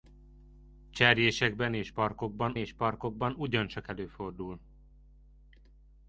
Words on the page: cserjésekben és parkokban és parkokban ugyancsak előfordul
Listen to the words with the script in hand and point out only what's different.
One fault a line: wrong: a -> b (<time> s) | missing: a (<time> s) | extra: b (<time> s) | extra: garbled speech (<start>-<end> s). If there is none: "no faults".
no faults